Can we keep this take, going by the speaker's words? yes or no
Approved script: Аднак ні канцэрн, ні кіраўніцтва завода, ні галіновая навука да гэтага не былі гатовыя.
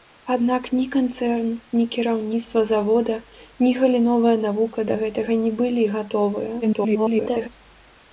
no